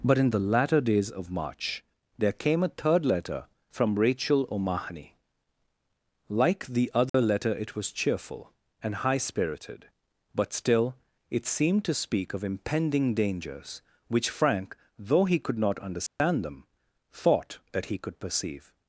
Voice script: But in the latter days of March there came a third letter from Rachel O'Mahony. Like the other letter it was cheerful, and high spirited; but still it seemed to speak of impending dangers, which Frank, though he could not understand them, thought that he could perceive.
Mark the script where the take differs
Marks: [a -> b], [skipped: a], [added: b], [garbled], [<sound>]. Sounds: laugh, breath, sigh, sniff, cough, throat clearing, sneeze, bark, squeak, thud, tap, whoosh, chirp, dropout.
But in the latter days of March there came a third letter from Rachel O'Mahony. Like the other [dropout] letter it was cheerful, and high spirited; but still it seemed to speak of impending dangers, which Frank, though he could not understand [dropout] them, thought that he could perceive.